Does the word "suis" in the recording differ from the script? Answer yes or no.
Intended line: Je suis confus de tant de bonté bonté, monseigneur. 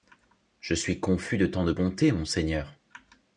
no